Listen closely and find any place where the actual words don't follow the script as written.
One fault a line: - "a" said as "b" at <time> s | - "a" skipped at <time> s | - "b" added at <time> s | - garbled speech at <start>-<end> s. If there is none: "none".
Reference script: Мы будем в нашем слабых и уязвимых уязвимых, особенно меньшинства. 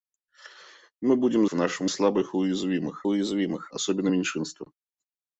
none